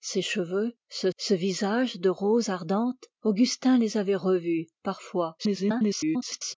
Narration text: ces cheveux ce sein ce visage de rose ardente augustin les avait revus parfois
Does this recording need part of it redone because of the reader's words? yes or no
yes